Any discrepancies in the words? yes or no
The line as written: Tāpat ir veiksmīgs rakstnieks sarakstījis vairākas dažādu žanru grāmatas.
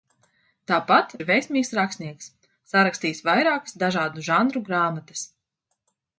no